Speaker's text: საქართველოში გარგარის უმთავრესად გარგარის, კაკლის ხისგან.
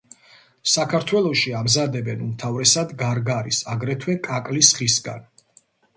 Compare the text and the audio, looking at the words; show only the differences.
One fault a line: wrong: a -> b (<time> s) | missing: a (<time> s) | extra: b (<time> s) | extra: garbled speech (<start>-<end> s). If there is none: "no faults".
wrong: გარგარის -> ამზადებენ (1.6 s)
extra: აგრეთვე (3.8 s)